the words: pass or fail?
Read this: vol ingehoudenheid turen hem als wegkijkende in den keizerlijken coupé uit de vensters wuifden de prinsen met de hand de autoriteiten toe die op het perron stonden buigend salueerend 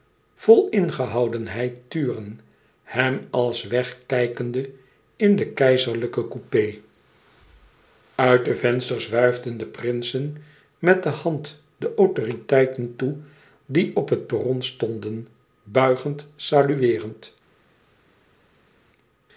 pass